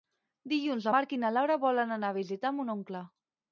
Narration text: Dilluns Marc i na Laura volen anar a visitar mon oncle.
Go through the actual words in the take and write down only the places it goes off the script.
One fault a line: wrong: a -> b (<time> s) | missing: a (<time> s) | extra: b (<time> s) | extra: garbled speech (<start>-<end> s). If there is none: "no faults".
no faults